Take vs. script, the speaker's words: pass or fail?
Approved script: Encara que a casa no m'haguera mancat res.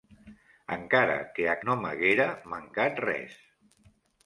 fail